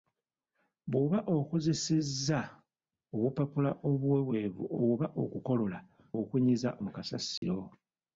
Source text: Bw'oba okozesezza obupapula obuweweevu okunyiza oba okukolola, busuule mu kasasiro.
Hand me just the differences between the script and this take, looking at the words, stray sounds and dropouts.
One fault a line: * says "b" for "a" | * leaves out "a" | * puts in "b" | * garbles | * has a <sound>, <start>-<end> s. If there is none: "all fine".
* leaves out "okunyiza"
* says "okunyiza" for "busuule"
* has a dropout, 7.4-7.4 s